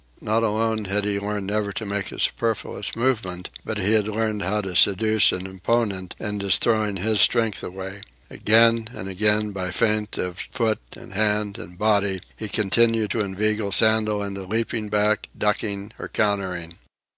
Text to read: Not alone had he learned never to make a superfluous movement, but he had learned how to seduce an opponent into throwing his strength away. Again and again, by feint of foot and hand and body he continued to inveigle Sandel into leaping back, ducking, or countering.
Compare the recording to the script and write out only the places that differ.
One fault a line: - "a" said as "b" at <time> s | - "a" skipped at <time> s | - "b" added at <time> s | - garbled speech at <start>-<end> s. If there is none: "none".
none